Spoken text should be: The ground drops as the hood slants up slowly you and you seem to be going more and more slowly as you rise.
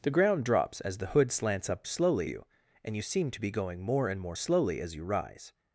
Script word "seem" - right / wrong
right